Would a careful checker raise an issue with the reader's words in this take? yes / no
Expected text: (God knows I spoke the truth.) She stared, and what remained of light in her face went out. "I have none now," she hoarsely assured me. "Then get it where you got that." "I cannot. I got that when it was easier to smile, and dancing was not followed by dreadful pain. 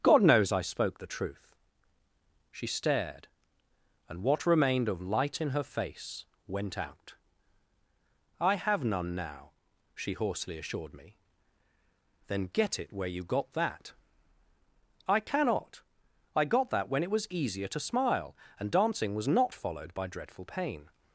no